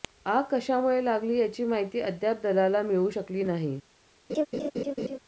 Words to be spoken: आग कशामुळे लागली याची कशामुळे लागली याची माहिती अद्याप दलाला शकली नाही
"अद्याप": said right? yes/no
yes